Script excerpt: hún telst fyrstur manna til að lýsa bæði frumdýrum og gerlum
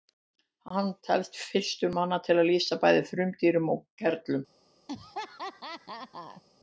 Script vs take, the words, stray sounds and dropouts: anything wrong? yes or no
yes